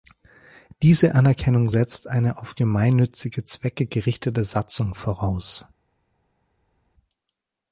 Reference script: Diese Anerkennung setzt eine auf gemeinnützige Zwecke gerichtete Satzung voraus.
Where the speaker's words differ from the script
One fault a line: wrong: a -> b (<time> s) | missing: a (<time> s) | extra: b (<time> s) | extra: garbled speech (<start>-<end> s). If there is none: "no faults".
no faults